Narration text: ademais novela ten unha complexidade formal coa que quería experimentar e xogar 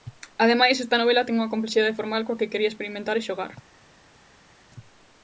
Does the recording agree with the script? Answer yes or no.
no